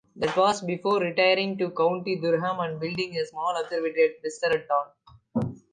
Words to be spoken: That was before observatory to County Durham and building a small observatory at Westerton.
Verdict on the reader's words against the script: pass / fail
fail